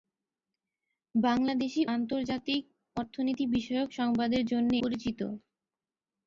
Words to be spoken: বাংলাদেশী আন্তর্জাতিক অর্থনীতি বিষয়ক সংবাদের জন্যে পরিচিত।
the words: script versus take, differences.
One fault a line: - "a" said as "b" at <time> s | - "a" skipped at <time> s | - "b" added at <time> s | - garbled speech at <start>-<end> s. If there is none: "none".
none